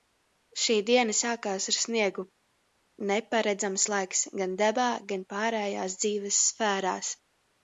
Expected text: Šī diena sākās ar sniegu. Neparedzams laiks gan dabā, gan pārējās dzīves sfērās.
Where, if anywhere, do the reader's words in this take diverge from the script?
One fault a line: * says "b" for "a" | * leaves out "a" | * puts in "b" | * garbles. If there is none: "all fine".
all fine